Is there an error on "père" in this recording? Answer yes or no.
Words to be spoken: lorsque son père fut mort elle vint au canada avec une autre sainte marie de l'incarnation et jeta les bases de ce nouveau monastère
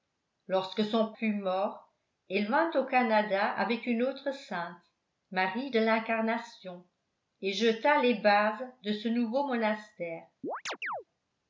yes